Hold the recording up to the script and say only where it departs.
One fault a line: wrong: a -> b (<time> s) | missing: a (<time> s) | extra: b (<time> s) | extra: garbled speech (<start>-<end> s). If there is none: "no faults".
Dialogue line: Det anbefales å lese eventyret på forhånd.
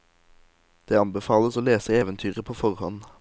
no faults